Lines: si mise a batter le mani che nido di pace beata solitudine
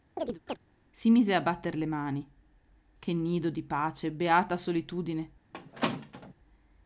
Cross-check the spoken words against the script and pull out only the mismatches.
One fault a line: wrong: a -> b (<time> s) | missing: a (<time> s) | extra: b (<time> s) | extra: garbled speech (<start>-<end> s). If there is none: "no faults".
no faults